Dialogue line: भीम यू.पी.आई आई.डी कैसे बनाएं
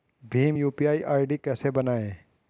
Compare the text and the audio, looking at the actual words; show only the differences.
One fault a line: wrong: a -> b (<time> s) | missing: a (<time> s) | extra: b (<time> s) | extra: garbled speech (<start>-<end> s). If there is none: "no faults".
no faults